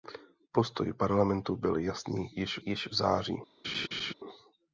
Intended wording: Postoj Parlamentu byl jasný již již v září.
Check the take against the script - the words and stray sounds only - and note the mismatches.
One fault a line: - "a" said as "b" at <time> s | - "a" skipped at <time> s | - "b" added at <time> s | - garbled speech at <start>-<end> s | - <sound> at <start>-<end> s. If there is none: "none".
- laugh at 3.6-4.1 s